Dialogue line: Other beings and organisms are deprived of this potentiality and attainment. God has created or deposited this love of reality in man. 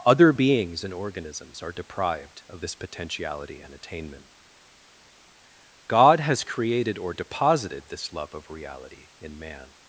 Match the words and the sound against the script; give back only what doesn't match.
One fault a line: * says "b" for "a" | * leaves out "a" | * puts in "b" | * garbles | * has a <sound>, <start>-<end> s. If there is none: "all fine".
all fine